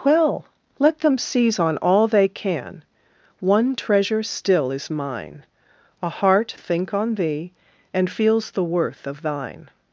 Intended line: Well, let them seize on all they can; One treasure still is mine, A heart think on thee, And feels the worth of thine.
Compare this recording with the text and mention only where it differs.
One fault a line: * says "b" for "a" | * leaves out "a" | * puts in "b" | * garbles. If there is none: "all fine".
all fine